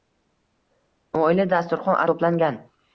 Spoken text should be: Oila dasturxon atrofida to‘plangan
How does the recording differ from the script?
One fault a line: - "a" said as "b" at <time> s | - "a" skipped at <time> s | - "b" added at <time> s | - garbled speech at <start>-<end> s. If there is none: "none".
- "atrofida" skipped at 2.0 s